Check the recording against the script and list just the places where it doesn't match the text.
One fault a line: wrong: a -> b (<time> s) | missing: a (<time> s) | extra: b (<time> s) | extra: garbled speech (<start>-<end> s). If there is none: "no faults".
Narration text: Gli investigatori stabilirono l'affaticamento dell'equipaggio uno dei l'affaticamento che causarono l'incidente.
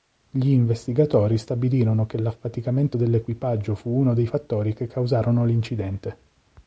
extra: che (2.1 s)
extra: fu (3.8 s)
wrong: l'affaticamento -> fattori (4.2 s)